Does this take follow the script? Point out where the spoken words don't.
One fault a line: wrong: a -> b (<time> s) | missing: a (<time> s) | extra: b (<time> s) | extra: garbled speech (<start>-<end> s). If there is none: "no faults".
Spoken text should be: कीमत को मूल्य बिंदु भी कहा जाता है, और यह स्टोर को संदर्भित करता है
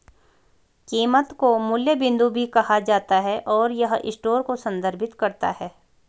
no faults